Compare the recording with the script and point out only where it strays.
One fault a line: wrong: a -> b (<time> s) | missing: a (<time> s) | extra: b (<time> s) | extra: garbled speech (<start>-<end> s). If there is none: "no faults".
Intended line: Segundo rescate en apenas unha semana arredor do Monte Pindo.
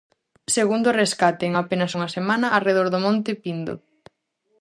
no faults